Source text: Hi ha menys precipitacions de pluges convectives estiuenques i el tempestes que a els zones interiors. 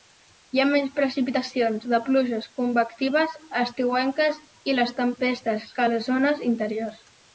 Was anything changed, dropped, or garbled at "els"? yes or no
yes